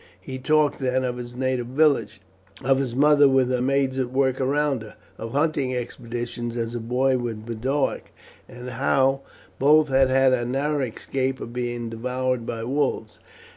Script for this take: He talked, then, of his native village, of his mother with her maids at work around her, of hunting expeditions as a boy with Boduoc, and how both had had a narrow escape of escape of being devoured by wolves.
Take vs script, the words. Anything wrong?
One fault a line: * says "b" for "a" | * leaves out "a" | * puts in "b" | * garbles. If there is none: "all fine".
* leaves out "escape of"